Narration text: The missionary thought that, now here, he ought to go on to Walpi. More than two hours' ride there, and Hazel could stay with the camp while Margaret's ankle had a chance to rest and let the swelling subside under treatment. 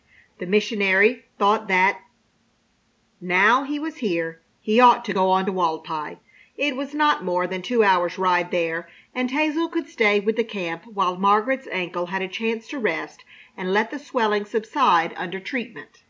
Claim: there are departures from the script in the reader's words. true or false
true